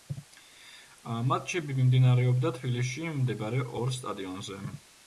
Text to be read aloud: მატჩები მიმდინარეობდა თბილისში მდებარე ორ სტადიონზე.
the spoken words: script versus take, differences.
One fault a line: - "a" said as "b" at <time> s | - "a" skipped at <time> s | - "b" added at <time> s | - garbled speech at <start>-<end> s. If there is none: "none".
none